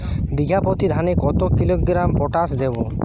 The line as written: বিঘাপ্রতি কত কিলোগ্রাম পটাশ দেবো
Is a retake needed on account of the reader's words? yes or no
yes